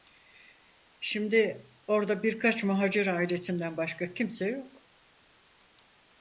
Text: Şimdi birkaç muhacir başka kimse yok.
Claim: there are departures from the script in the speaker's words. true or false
true